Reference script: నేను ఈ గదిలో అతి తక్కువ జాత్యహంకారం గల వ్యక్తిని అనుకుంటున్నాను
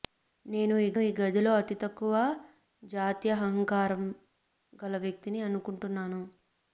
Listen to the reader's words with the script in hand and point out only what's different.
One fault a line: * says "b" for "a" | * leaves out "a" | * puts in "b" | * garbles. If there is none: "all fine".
* puts in "ఈ"